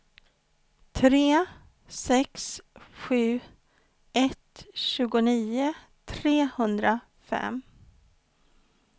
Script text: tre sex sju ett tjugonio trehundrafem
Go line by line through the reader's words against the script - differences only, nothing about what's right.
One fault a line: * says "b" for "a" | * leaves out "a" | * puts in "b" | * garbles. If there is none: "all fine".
all fine